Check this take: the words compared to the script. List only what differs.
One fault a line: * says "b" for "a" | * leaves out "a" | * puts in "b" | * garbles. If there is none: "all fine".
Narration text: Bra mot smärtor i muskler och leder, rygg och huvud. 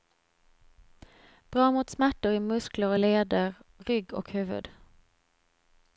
all fine